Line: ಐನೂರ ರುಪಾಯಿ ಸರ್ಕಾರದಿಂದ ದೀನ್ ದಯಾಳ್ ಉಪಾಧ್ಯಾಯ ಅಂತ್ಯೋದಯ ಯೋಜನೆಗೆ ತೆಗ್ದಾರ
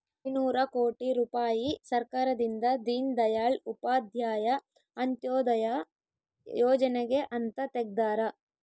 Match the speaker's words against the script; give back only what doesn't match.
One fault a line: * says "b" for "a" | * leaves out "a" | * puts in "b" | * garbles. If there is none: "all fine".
* puts in "ಕೋಟಿ"
* puts in "ಅಂತ"